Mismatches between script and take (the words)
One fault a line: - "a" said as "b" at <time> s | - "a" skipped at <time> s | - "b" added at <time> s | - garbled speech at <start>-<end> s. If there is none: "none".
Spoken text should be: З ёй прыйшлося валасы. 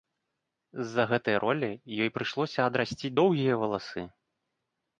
- "за гэтай ролі" added at 0.9 s
- "адрасціць доўгія" added at 2.7 s